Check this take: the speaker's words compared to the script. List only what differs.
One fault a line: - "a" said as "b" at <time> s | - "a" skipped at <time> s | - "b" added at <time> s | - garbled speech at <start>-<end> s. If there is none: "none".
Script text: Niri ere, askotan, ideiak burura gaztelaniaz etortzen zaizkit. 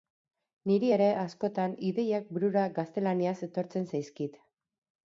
none